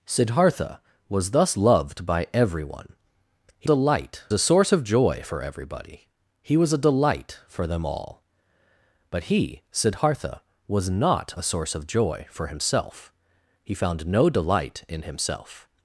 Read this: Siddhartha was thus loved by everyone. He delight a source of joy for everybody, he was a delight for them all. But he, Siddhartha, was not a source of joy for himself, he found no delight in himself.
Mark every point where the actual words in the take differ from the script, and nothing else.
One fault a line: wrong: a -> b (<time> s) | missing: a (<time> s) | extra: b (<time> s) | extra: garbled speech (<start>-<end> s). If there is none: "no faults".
no faults